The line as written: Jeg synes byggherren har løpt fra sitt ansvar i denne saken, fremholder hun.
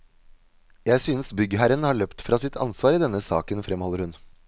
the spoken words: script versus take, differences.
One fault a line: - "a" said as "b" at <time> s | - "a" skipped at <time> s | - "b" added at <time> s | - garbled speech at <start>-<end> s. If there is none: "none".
none